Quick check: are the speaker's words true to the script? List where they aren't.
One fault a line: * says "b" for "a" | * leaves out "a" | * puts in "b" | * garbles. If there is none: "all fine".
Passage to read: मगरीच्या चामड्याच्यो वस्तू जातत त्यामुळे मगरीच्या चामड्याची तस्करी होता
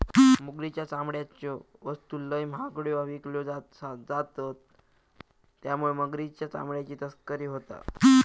* puts in "लय महागड्यो विकल्यो"